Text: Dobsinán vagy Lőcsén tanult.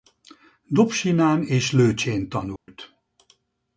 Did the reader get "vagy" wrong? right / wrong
wrong